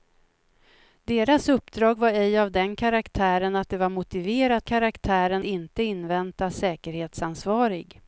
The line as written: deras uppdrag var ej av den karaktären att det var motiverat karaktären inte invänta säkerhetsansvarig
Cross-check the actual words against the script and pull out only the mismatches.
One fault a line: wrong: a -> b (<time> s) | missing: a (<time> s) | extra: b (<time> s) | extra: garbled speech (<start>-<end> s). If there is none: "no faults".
no faults